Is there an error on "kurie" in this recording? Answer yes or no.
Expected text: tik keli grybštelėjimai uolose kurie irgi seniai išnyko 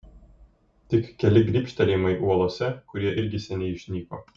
no